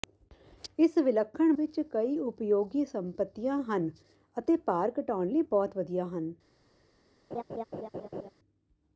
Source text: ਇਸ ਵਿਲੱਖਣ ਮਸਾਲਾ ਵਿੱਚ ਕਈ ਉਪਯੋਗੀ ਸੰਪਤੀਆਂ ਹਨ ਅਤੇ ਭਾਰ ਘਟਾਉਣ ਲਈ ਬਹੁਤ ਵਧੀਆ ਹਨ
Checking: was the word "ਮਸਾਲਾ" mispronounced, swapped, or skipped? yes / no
yes